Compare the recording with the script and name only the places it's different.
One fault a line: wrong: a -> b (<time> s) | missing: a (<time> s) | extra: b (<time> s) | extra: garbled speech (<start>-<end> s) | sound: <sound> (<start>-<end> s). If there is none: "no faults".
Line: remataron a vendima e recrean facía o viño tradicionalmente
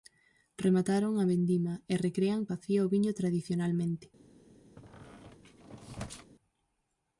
sound: squeak (4.8-6.3 s)